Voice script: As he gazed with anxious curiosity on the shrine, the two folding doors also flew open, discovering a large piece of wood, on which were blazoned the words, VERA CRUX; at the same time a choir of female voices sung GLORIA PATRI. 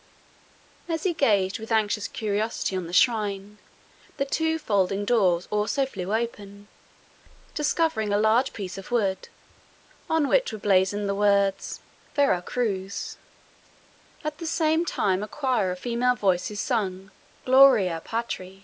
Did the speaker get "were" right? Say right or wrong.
right